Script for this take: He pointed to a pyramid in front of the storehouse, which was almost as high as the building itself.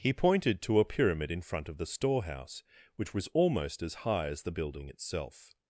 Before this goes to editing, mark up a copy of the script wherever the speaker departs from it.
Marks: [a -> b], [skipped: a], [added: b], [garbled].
He pointed to a pyramid in front of the storehouse, which was almost as high as the building itself.